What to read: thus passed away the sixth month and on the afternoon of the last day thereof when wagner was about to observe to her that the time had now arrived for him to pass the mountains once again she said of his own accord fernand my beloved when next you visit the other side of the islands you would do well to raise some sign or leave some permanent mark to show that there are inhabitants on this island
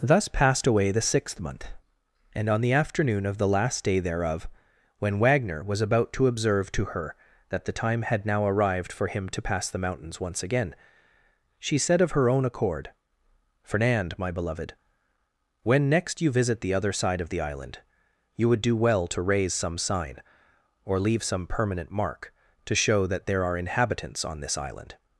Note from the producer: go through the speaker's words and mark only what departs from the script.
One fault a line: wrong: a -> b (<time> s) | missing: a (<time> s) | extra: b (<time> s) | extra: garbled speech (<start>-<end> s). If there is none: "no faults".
wrong: his -> her (12.1 s)
wrong: islands -> island (17.4 s)